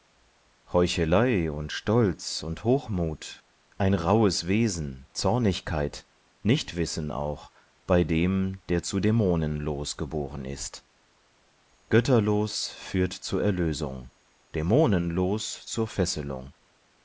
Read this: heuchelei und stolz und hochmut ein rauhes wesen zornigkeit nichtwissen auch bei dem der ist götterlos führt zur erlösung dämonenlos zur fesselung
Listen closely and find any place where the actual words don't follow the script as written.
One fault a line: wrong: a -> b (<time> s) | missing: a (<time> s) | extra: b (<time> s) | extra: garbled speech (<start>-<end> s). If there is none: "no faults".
extra: zu dämonenlos geboren (8.8 s)